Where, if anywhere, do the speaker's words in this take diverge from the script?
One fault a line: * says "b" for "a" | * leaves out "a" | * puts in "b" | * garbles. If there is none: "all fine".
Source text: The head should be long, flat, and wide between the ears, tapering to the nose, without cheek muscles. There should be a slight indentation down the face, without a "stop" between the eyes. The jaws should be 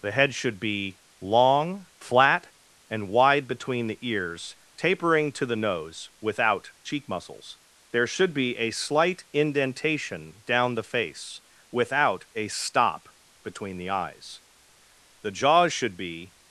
all fine